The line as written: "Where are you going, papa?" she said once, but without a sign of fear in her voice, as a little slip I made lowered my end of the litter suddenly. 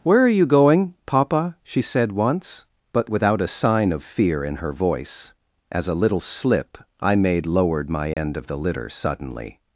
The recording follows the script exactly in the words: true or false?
true